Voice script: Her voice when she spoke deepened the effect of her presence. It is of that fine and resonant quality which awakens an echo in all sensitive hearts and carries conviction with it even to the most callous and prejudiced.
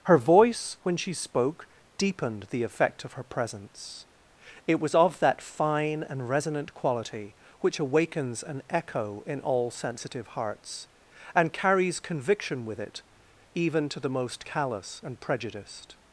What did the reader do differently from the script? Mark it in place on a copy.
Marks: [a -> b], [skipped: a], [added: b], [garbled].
Her voice when she spoke deepened the effect of her presence. It [is -> was] of that fine and resonant quality which awakens an echo in all sensitive hearts and carries conviction with it even to the most callous and prejudiced.